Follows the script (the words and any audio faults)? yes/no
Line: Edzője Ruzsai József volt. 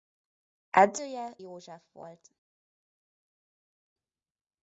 no